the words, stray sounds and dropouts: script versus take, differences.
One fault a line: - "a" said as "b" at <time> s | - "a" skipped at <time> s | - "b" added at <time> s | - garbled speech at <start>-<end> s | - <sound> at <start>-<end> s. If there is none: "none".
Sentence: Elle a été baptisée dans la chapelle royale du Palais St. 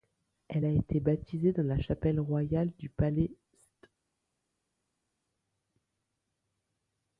none